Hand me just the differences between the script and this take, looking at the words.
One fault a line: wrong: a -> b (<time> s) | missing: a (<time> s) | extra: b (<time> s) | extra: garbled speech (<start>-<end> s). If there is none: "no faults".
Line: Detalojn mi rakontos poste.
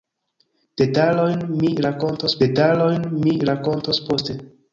extra: detalojn mi rakontos (2.4 s)